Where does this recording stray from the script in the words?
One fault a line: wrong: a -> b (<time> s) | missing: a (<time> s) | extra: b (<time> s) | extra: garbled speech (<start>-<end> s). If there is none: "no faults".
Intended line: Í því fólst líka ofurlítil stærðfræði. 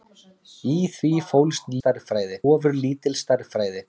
wrong: líka -> stærðfræði (1.8 s)